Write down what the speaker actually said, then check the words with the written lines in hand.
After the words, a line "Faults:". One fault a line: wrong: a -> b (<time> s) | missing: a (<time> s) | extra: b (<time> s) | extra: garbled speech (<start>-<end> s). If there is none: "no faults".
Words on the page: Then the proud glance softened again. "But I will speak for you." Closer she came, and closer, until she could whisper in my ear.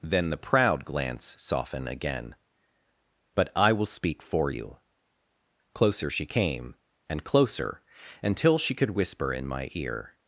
Then the proud glance soften again. "But I will speak for you." Closer she came, and closer, until she could whisper in my ear.
Faults:
wrong: softened -> soften (1.4 s)